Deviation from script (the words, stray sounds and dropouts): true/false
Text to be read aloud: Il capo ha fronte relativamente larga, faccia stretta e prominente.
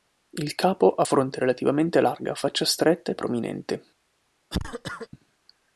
true